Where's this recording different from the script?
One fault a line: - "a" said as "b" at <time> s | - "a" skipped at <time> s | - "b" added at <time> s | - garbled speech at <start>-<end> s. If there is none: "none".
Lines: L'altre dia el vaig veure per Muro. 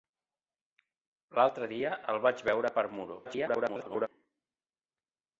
- garbled speech at 3.2-4.1 s